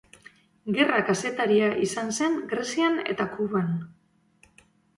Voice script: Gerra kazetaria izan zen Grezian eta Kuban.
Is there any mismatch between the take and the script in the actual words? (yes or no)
no